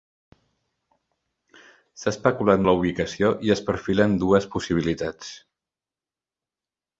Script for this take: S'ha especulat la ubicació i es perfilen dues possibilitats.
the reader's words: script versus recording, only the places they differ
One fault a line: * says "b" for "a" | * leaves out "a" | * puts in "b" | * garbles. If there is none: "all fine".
all fine